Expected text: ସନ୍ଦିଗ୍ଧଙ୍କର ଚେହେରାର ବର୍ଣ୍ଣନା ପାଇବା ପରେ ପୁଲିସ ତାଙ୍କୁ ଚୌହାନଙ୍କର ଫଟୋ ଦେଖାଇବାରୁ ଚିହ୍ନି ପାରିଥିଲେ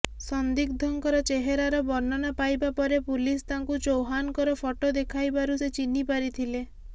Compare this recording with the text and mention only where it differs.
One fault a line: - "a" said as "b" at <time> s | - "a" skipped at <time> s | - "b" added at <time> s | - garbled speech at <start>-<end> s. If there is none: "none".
- "ସେ" added at 5.6 s